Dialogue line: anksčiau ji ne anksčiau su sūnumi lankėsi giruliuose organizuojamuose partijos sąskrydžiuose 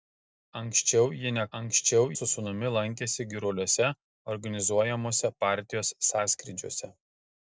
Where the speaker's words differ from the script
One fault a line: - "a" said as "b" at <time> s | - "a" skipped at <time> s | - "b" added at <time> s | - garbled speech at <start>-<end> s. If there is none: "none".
none